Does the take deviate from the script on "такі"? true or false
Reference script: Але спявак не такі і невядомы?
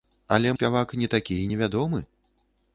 false